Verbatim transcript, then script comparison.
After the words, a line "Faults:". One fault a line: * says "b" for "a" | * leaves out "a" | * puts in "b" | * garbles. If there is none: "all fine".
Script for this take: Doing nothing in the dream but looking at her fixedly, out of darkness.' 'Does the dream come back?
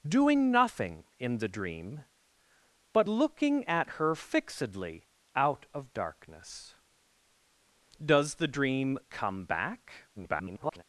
Doing nothing in the dream but looking at her fixedly, out of darkness.' 'Does the dream come back? [garbled]
Faults:
* garbles